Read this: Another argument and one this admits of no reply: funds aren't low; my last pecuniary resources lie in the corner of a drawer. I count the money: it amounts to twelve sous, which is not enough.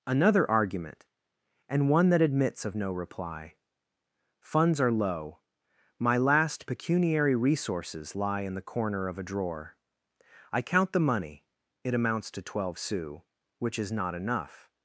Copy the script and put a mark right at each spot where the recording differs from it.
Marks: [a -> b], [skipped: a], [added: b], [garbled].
Another argument and one [this -> that] admits of no reply: funds [aren't -> are] low; my last pecuniary resources lie in the corner of a drawer. I count the money: it amounts to twelve sous, which is not enough.